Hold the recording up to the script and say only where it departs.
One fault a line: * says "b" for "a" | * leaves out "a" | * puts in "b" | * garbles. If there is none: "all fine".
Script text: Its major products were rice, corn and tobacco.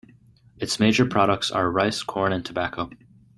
* says "are" for "were"